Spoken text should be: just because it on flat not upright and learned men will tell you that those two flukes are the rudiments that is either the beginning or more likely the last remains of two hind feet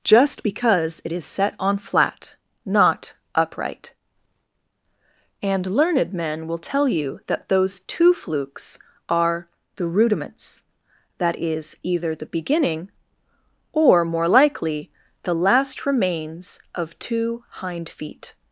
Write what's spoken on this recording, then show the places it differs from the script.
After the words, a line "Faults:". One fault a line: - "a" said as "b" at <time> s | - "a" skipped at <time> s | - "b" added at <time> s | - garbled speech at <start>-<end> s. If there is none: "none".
just because it is set on flat not upright and learned men will tell you that those two flukes are the rudiments that is either the beginning or more likely the last remains of two hind feet
Faults:
- "is set" added at 1.1 s